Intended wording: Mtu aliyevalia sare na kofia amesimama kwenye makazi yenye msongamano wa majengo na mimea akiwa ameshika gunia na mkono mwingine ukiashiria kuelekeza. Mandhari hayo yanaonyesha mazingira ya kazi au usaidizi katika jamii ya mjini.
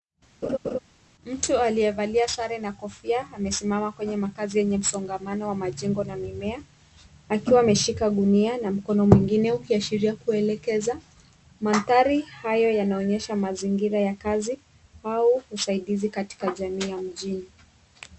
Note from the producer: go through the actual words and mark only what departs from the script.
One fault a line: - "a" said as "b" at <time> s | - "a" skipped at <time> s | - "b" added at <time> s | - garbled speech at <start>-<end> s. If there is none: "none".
none